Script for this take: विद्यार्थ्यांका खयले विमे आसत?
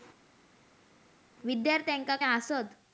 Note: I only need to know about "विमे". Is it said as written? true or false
false